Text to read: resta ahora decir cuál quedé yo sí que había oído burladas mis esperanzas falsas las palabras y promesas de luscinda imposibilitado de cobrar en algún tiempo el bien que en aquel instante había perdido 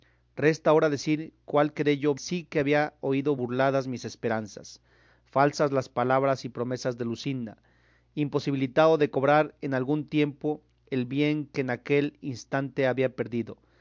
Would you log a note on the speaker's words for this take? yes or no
no